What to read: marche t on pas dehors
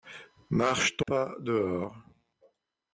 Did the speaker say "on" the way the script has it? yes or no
no